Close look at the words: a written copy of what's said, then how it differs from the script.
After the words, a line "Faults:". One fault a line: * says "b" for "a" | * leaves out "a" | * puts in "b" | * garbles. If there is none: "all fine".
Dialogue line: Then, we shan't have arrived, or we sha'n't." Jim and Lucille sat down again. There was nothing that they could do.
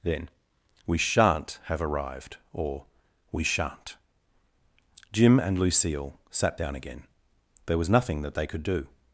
Then, we shan't have arrived, or we sha'n't." Jim and Lucille sat down again. There was nothing that they could do.
Faults:
all fine